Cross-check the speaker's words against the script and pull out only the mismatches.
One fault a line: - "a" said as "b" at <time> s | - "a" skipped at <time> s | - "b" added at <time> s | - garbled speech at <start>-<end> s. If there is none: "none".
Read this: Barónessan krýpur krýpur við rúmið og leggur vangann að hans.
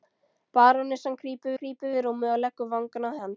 none